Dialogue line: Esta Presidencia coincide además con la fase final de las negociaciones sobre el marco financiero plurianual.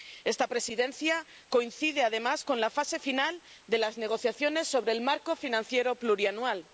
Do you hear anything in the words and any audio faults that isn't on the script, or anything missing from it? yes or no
no